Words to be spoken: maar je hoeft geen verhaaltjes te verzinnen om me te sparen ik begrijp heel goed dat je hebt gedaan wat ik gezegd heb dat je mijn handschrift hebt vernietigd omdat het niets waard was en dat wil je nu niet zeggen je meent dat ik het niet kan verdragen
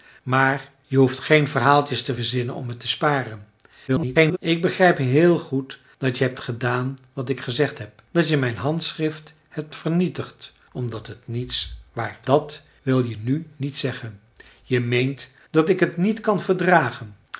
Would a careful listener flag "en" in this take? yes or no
yes